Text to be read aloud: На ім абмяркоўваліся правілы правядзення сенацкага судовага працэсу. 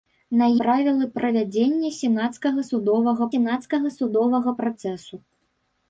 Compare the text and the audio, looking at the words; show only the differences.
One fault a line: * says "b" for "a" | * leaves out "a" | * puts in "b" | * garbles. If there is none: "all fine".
* says "правілы правядзення сенацкага судовага" for "ім абмяркоўваліся правілы правядзення"